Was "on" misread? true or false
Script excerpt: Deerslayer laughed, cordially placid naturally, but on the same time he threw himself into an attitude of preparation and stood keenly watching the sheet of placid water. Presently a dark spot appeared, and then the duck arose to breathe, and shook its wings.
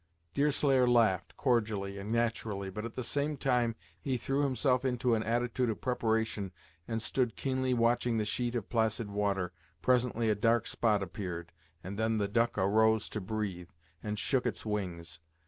true